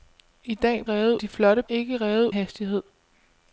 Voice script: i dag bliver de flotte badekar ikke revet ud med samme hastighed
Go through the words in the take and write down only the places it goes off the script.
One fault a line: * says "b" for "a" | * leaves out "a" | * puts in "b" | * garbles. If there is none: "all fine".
* says "revet" for "bliver"
* leaves out "badekar"
* leaves out "ud med samme"